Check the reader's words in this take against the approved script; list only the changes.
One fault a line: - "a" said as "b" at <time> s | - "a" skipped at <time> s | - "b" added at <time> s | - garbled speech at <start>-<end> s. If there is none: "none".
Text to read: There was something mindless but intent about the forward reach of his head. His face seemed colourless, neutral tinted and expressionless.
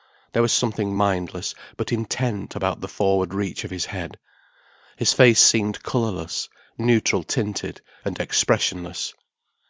none